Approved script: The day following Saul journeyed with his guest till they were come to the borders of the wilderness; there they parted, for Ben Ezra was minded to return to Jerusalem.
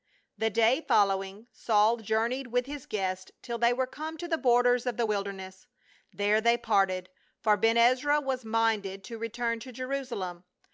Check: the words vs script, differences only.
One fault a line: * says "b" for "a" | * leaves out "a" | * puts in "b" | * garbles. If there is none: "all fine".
all fine